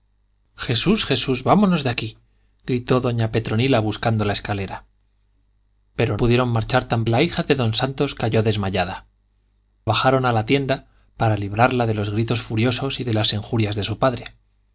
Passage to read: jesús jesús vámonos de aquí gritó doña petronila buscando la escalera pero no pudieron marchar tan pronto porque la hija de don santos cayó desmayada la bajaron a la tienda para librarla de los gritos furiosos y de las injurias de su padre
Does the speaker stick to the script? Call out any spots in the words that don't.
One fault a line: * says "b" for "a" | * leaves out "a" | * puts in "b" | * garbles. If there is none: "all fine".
* leaves out "no"
* leaves out "pronto porque"
* leaves out "la"